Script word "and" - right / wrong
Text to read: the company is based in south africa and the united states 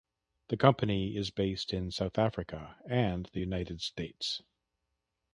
right